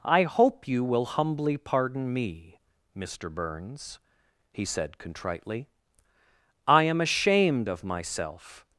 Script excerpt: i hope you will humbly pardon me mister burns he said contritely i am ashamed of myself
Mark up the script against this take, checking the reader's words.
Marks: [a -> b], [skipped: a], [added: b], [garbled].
i hope you will humbly pardon me mister burns he said contritely i am ashamed of myself